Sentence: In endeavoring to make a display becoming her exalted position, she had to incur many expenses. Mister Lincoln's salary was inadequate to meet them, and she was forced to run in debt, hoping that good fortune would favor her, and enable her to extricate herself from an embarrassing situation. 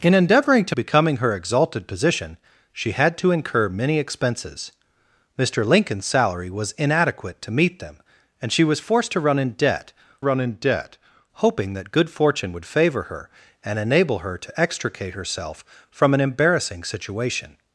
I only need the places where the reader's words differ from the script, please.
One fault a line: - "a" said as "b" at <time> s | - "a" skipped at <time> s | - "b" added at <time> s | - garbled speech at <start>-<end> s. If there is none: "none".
- "make a display" skipped at 0.8 s
- "run in debt" added at 10.2 s